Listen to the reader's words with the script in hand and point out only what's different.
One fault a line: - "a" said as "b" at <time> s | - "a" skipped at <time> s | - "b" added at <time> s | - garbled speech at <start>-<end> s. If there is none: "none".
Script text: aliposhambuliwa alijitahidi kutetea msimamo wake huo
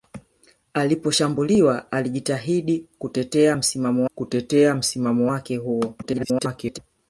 - "kutetea msimamo" added at 4.2 s
- garbled speech at 6.0-6.8 s